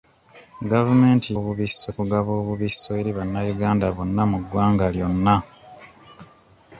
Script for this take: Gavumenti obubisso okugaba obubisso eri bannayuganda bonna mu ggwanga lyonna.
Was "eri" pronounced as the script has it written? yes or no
yes